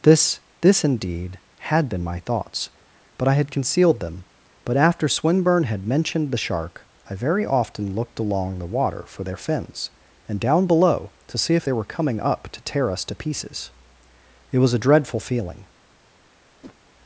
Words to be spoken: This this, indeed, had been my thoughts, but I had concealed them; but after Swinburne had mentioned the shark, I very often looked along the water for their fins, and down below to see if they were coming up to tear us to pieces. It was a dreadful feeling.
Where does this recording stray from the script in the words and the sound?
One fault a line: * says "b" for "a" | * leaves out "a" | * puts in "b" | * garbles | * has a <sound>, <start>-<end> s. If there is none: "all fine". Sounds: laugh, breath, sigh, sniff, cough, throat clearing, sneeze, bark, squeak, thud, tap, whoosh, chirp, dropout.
* has a whoosh, 16.6-16.8 s